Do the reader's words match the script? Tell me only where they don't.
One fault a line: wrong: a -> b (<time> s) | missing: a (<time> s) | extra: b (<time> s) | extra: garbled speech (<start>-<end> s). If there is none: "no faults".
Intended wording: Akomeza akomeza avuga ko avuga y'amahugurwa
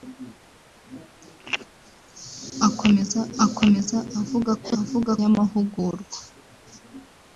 no faults